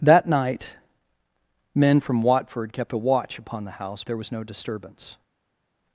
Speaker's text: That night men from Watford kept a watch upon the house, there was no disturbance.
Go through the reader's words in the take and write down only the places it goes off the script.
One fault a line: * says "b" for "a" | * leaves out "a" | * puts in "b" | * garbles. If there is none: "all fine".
all fine